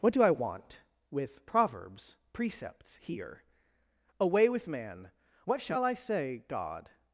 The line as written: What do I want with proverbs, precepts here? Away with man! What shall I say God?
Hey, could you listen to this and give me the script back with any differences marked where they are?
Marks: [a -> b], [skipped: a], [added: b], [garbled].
What do I want with proverbs, precepts here? Away with man! What shall I say God?